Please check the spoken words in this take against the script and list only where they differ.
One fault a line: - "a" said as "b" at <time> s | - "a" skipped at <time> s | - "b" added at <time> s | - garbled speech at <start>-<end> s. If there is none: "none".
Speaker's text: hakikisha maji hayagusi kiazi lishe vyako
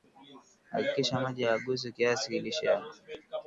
none